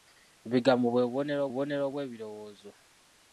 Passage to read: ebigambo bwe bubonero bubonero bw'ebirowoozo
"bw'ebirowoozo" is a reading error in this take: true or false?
false